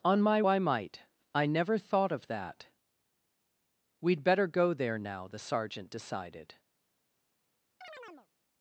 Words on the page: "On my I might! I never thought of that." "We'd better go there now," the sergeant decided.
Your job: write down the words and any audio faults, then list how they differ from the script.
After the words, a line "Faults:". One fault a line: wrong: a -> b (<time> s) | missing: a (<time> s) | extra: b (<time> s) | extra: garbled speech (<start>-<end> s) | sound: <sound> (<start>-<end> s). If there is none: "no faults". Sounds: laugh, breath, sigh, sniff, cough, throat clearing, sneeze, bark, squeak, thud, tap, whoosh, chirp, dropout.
"On my I might! I never thought of that." "We'd better go there now," the sergeant decided.
Faults:
sound: chirp (7.8-8.3 s)